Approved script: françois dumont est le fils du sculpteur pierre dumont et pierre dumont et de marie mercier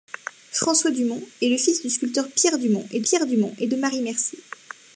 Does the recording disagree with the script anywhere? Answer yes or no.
no